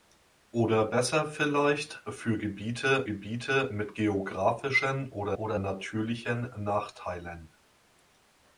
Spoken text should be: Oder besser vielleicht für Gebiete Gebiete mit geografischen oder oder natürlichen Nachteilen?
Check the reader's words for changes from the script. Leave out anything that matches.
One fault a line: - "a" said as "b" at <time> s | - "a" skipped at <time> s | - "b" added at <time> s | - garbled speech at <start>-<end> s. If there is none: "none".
none